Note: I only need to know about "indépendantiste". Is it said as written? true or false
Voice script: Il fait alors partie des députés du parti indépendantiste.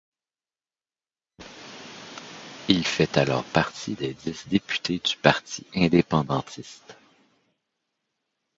true